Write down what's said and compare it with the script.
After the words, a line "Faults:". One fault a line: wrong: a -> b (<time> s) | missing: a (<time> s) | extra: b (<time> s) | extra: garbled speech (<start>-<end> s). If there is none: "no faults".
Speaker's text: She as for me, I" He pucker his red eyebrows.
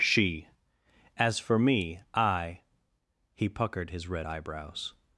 She as for me, I" He puckered his red eyebrows.
Faults:
wrong: pucker -> puckered (3.5 s)